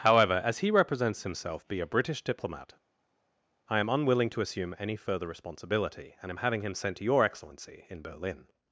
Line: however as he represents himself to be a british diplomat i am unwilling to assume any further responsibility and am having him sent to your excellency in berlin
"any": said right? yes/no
yes